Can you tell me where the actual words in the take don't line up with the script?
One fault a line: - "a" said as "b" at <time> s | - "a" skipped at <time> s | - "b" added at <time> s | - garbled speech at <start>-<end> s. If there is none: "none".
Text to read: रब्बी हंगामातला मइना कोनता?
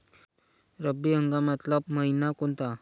none